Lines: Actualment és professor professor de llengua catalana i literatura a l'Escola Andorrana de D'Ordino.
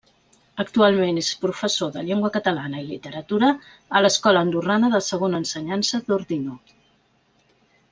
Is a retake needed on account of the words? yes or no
yes